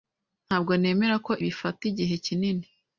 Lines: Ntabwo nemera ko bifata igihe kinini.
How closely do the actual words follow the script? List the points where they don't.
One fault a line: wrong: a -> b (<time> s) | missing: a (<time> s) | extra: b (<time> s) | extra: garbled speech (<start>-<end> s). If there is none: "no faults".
no faults